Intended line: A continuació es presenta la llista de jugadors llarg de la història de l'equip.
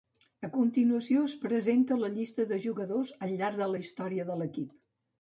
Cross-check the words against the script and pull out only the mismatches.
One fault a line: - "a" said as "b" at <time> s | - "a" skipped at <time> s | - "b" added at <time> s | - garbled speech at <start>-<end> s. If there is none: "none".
- "al" added at 3.3 s